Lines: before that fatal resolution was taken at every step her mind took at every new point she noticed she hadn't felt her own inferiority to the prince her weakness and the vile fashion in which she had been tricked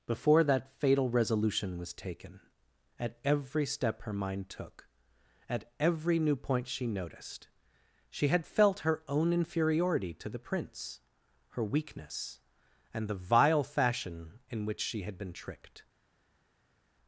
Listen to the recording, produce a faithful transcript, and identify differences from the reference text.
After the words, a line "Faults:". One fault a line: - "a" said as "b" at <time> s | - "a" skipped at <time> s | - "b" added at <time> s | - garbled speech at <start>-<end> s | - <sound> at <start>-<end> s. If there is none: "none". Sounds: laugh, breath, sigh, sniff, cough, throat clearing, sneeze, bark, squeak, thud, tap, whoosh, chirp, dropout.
before that fatal resolution was taken at every step her mind took at every new point she noticed she had felt her own inferiority to the prince her weakness and the vile fashion in which she had been tricked
Faults:
- "hadn't" said as "had" at 8.3 s